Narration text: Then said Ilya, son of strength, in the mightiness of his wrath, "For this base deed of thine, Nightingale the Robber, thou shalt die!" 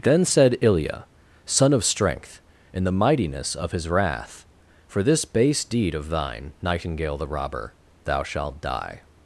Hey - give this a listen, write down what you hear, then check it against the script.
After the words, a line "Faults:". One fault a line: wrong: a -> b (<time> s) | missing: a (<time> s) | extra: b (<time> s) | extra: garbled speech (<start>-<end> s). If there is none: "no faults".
Then said Ilya, son of strength, in the mightiness of his wrath, "For this base deed of thine, Nightingale the Robber, thou shalt die!"
Faults:
no faults